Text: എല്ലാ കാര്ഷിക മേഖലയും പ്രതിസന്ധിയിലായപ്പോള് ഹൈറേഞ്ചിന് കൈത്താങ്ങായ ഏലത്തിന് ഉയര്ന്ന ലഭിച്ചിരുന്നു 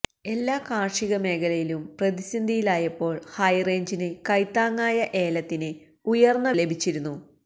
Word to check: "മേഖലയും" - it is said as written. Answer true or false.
true